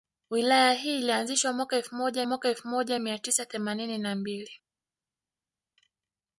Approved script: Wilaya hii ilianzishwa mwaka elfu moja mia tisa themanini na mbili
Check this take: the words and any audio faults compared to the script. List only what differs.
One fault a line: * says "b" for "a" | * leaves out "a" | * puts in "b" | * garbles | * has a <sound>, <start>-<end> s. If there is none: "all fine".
* puts in "mwaka elfu moja"